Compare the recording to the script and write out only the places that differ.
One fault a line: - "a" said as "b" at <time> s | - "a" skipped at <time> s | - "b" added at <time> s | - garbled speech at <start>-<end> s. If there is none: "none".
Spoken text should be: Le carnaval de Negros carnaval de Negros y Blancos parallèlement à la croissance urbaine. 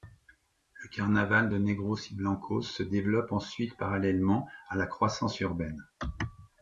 - "carnaval de Negros y Blancos" said as "y Blancos se développe ensuite" at 2.1 s